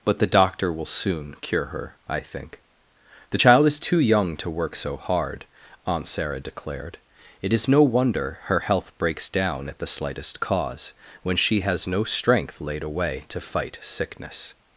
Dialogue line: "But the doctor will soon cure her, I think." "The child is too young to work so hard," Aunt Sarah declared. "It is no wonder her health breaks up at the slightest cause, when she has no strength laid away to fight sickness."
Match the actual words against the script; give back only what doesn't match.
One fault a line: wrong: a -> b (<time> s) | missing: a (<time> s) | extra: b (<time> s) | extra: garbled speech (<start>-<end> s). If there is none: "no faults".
wrong: up -> down (9.3 s)